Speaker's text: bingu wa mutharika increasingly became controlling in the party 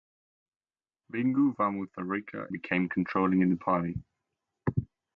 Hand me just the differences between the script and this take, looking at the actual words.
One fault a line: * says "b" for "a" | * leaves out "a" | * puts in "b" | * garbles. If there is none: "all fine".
* leaves out "increasingly"